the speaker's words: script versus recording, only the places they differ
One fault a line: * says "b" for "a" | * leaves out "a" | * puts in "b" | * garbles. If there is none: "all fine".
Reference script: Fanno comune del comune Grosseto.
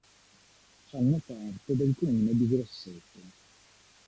* says "parte" for "comune"
* puts in "di"